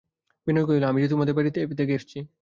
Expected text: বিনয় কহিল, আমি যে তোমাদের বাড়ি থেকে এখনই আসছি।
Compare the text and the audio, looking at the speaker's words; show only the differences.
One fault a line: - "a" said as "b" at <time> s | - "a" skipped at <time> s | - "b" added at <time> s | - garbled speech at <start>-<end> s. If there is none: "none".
- "এখনই" skipped at 1.9 s